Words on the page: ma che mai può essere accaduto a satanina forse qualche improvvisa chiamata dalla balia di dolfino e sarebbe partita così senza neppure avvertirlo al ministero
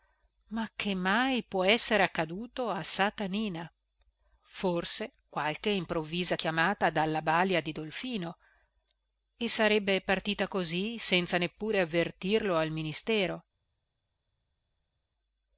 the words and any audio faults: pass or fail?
pass